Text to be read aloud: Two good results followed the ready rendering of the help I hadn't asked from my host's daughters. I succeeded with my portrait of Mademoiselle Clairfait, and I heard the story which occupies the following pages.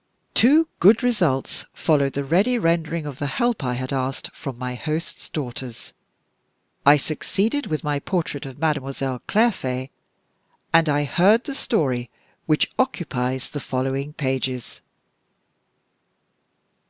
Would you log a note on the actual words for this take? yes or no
yes